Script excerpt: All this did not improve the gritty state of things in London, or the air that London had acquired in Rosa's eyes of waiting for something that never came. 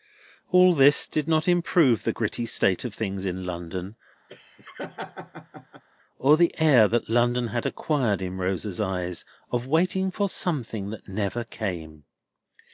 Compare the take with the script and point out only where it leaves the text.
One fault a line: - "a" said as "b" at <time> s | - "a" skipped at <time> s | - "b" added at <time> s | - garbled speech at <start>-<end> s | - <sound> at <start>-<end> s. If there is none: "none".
- laugh at 4.3-5.8 s